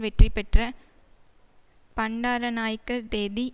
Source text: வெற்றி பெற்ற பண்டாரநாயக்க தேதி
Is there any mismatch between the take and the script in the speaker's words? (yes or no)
no